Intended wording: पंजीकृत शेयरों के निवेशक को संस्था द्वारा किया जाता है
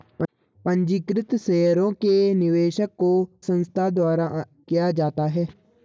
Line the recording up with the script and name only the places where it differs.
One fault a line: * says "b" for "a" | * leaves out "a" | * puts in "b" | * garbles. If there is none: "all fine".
all fine